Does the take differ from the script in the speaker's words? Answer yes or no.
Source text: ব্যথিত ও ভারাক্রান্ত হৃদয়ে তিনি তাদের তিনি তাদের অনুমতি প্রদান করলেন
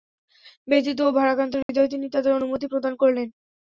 yes